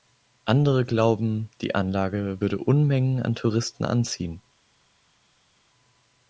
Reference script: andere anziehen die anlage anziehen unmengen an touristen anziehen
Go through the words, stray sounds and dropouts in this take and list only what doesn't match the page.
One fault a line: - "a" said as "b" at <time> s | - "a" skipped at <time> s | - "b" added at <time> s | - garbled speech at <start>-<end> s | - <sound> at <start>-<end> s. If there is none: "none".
- "anziehen" said as "glauben" at 0.8 s
- "anziehen" said as "würde" at 2.4 s